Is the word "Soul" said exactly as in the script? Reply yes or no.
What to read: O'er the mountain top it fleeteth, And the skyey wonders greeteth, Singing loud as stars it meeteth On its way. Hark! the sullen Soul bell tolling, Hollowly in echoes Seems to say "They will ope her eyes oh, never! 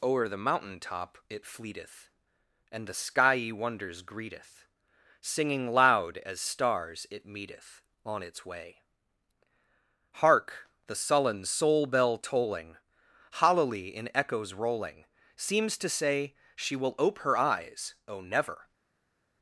yes